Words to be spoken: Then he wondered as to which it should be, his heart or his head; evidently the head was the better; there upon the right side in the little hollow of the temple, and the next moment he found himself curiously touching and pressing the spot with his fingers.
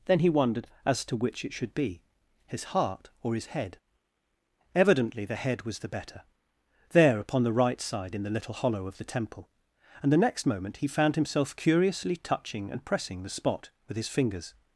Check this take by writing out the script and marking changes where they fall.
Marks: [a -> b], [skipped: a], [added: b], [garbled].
Then he wondered as to which it should be, his heart or his head; evidently the head was the better; there upon the right side in the little hollow of the temple, and the next moment he found himself curiously touching and pressing the spot with his fingers.